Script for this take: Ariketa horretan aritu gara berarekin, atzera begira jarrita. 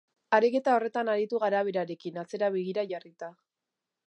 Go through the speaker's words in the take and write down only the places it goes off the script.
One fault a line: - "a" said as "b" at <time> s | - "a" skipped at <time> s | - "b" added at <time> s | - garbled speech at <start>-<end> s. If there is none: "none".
none